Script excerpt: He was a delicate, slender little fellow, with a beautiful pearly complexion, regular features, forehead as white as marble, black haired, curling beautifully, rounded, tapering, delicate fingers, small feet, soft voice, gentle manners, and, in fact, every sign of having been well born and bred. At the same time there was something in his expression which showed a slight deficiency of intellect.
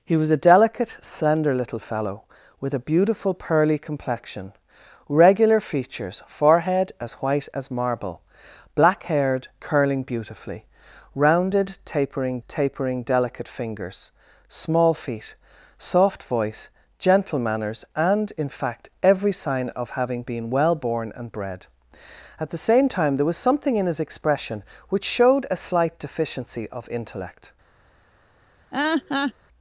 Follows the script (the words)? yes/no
no